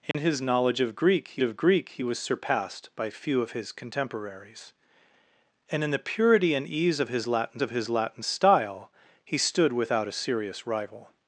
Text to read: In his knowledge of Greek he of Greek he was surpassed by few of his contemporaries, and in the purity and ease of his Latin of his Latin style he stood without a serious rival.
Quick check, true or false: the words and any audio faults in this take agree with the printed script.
false